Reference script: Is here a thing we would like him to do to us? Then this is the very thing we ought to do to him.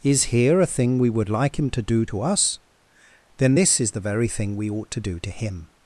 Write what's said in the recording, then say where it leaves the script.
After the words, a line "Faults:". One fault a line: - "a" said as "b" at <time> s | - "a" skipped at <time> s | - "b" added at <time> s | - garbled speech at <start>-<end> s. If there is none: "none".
Is here a thing we would like him to do to us? Then this is the very thing we ought to do to him.
Faults:
none